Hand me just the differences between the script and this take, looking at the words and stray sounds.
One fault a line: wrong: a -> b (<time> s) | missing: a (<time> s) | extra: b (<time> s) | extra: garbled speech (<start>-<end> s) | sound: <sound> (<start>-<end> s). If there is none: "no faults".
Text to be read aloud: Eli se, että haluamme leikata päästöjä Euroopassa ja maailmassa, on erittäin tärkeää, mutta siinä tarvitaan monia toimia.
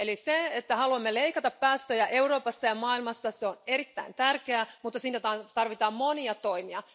no faults